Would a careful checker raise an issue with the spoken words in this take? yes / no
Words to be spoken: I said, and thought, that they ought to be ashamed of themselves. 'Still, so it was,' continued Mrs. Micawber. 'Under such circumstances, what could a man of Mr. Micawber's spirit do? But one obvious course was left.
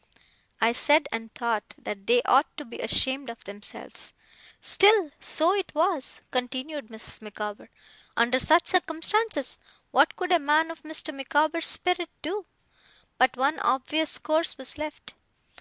no